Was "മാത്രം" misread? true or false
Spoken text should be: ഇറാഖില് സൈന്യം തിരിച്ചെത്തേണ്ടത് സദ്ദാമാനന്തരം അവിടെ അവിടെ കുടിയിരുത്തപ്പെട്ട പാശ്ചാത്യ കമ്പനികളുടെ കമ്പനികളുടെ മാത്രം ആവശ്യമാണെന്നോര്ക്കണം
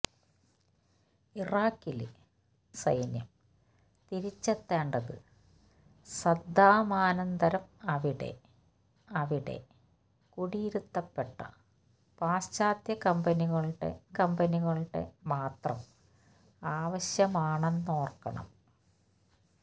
false